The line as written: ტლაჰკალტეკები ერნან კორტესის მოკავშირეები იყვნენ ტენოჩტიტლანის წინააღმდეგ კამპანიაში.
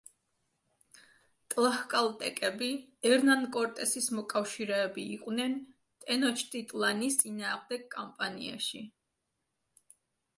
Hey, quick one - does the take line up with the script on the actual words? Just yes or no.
yes